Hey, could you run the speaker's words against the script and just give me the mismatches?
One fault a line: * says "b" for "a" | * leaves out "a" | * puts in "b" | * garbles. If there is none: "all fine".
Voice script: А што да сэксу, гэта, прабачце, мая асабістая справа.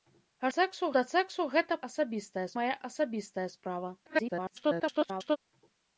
* says "сэксу" for "што"
* says "асабістая" for "прабачце"
* garbles